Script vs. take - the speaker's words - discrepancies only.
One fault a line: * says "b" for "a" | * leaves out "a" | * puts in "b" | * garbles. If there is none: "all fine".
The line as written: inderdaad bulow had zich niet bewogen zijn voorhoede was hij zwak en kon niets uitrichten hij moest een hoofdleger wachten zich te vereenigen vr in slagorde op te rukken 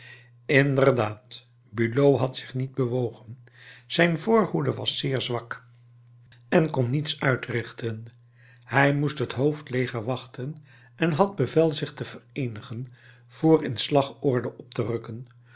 * says "zeer" for "hij"
* says "het" for "een"
* puts in "en had bevel"